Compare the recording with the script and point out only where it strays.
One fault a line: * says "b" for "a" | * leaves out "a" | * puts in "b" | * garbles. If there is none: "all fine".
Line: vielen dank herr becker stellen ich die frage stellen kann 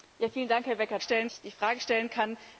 all fine